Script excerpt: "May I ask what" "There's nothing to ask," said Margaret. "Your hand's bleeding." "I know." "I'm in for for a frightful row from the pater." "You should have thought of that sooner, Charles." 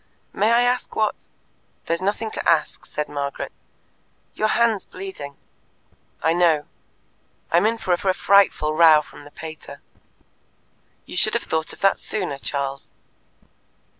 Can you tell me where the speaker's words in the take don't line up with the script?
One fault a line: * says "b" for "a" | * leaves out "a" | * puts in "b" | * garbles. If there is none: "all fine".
all fine